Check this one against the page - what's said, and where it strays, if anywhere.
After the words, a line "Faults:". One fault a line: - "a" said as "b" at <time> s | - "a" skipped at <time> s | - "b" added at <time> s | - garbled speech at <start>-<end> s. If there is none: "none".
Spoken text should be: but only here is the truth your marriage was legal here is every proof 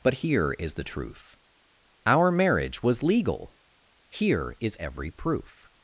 but here is the truth our marriage was legal here is every proof
Faults:
- "only" skipped at 0.1 s
- "your" said as "our" at 2.0 s